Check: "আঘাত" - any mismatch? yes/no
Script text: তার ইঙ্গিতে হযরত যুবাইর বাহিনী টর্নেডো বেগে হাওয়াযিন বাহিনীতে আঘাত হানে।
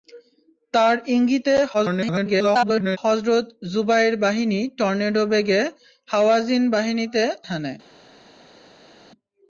yes